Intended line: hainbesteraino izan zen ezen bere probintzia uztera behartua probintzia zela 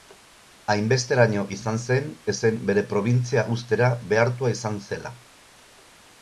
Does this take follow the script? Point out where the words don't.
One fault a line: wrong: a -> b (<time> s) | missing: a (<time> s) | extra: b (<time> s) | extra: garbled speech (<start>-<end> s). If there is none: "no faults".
wrong: probintzia -> izan (4.6 s)